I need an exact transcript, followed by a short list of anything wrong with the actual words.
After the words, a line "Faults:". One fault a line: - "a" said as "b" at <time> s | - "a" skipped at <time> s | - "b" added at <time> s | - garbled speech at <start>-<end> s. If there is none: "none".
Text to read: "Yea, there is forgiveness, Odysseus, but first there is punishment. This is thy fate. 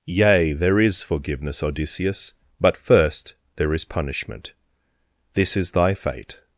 "Yea, there is forgiveness, Odysseus, but first there is punishment. This is thy fate.
Faults:
none